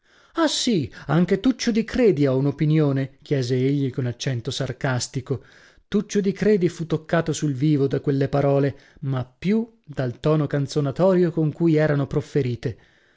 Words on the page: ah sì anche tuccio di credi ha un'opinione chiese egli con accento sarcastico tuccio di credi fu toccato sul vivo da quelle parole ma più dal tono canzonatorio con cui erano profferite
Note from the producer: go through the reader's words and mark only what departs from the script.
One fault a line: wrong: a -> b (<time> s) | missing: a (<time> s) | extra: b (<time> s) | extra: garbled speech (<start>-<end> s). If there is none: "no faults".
no faults